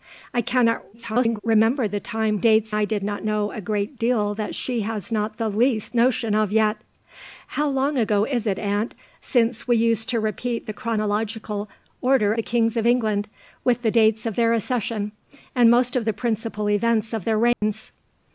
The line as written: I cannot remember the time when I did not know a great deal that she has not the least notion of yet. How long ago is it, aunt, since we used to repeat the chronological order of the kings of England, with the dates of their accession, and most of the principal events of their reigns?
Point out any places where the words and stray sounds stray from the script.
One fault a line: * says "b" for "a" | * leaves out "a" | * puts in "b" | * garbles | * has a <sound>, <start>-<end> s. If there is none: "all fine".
* garbles
* says "dates" for "when"
* leaves out "of"
* has a dropout, 17.5-17.6 s